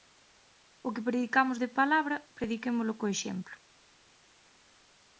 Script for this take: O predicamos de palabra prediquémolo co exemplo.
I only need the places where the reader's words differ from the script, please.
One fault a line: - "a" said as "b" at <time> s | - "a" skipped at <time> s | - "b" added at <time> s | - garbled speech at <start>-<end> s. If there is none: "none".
- "que" added at 0.9 s